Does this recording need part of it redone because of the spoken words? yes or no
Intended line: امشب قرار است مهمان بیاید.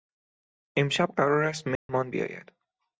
no